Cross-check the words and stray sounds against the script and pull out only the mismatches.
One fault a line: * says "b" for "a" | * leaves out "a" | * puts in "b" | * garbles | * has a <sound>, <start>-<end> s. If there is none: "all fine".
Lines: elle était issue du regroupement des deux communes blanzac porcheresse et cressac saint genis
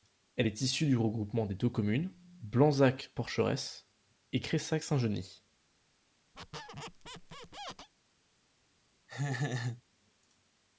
* says "est" for "était"
* has a squeak, 6.3-7.9 s
* has a laugh, 9.1-9.8 s